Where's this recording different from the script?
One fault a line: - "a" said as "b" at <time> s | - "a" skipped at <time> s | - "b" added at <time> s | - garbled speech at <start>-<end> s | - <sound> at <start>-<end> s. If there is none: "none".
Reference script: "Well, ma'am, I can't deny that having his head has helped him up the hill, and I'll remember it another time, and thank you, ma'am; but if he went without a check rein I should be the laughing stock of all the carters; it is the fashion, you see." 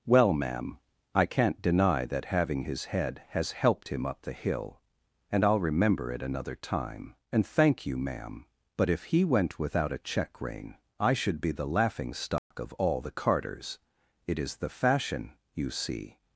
- dropout at 12.4-12.5 s